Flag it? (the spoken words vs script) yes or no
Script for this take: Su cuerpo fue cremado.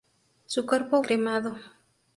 yes